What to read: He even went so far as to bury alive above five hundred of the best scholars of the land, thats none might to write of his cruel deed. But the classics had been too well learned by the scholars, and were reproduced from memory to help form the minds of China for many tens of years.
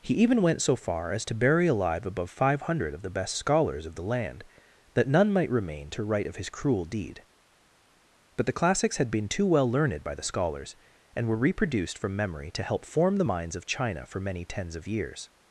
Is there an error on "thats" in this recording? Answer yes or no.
yes